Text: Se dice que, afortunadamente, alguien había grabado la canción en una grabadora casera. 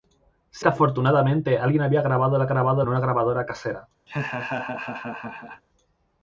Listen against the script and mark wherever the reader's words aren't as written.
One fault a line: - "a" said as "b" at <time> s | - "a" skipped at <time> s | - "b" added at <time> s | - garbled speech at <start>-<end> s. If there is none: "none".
- "dice" skipped at 0.7 s
- "canción" said as "grabado" at 2.5 s